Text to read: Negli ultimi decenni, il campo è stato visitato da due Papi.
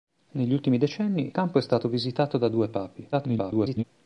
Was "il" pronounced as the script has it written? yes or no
no